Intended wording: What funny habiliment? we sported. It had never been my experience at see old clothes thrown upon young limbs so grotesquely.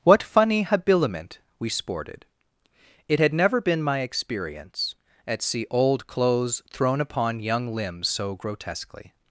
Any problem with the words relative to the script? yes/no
no